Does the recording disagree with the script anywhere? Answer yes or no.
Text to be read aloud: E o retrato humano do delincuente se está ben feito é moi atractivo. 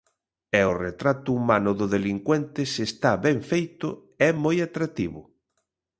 no